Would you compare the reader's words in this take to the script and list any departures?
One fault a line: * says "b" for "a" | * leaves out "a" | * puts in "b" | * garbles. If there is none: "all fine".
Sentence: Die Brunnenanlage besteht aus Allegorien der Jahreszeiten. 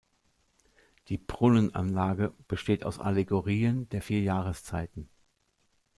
* puts in "vier"